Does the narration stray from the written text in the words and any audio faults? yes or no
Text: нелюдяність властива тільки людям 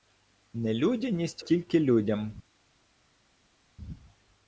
yes